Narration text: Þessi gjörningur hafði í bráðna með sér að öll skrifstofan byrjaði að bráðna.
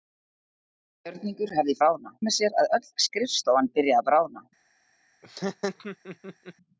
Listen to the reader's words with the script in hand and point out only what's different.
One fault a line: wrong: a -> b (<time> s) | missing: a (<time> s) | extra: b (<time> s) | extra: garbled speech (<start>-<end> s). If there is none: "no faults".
no faults